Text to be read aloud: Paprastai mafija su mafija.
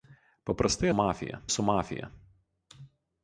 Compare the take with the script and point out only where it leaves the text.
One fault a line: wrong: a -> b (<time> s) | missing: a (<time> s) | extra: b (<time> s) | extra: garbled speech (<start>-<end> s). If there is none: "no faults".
no faults